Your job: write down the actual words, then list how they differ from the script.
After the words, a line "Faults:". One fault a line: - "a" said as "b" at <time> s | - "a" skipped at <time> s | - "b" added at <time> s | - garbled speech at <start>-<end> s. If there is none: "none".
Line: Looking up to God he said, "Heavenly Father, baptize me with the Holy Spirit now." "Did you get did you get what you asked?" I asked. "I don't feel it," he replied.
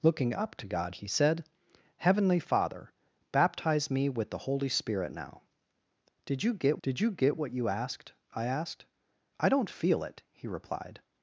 Looking up to God he said, "Heavenly Father, baptize me with the Holy Spirit now." "Did you get did you get what you asked?" I asked. "I don't feel it," he replied.
Faults:
none